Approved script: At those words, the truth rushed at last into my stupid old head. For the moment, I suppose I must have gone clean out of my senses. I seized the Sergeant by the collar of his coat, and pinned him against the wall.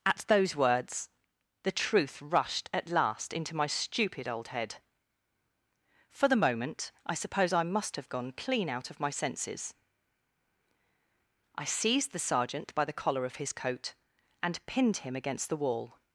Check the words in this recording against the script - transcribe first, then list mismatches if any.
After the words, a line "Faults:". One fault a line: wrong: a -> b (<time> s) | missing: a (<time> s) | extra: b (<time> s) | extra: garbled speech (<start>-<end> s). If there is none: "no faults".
At those words, the truth rushed at last into my stupid old head. For the moment, I suppose I must have gone clean out of my senses. I seized the Sergeant by the collar of his coat, and pinned him against the wall.
Faults:
no faults